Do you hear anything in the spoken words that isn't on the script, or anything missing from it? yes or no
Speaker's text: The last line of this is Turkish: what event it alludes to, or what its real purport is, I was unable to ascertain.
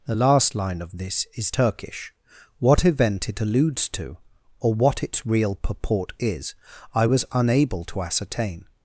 no